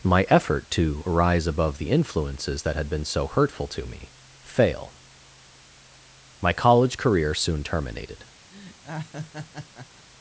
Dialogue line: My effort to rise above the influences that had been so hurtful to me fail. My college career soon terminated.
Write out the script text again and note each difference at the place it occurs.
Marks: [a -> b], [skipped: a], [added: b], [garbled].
My effort to rise above the influences that had been so hurtful to me fail. My college career soon terminated.